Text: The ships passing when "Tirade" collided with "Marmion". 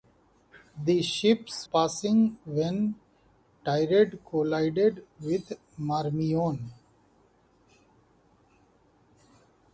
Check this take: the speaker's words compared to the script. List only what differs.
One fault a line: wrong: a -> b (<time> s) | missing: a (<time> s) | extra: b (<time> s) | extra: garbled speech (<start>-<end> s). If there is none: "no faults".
no faults